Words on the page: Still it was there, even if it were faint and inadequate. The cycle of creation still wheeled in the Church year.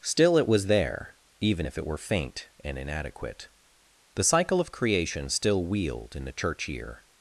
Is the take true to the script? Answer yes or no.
yes